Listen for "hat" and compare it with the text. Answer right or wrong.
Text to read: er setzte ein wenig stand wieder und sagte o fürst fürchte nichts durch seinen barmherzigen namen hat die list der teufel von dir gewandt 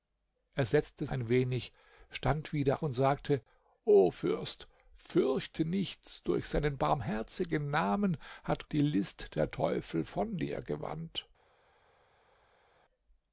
right